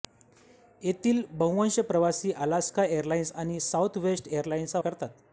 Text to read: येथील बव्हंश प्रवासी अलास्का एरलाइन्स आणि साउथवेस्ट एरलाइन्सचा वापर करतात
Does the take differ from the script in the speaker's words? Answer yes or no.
yes